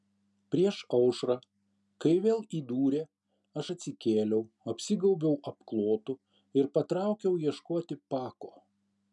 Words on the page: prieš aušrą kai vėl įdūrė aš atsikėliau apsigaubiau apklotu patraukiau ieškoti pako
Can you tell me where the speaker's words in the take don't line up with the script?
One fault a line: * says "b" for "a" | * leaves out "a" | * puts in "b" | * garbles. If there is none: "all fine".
* puts in "ir"